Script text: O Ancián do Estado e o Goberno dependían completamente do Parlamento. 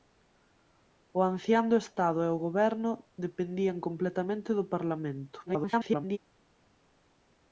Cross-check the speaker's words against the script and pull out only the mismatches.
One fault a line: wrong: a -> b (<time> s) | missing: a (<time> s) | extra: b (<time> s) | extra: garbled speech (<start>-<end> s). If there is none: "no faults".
extra: garbled speech (5.5-6.2 s)